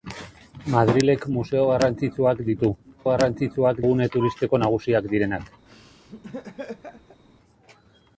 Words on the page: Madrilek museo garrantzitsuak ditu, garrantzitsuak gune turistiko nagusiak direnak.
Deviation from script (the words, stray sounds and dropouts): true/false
true